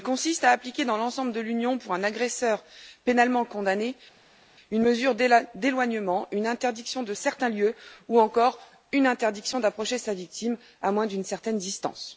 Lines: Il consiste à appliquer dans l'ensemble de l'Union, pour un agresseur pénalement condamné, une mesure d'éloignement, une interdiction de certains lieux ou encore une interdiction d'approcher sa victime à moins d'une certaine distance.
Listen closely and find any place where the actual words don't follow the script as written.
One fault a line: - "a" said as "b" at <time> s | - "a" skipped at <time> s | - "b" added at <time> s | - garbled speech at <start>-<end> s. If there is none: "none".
none